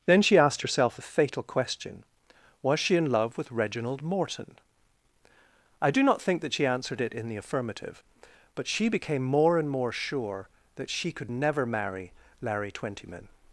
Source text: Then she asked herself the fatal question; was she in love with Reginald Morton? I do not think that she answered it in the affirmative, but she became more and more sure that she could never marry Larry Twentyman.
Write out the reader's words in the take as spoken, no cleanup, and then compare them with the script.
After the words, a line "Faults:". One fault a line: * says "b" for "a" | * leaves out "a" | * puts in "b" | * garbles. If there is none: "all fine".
Then she asked herself a fatal question; was she in love with Reginald Morton? I do not think that she answered it in the affirmative, but she became more and more sure that she could never marry Larry Twentyman.
Faults:
* says "a" for "the"